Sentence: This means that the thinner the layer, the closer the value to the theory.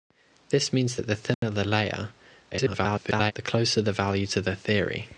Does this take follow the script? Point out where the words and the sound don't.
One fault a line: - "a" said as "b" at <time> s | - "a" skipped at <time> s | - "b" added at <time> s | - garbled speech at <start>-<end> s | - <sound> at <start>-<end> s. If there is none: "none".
- dropout at 1.3-1.4 s
- garbled speech at 2.5-3.3 s